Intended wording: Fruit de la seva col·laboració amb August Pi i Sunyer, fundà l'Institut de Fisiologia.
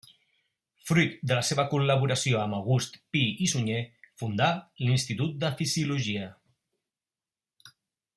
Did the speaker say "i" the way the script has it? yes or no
yes